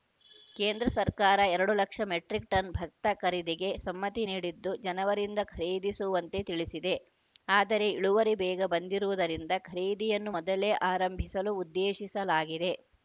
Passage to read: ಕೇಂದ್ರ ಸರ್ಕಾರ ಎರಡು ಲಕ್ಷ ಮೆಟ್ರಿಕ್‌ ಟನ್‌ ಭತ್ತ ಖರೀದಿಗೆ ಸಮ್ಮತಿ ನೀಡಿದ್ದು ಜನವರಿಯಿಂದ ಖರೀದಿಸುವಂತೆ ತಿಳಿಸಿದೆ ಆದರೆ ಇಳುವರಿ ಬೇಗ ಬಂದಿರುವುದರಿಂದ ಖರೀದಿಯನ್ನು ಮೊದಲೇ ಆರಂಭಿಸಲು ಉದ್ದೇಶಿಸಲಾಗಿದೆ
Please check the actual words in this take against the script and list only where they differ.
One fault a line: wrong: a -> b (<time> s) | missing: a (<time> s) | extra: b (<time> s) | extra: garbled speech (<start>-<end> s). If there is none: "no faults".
no faults